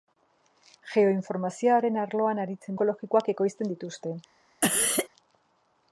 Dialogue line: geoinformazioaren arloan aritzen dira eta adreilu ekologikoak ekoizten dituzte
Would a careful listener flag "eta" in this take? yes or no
yes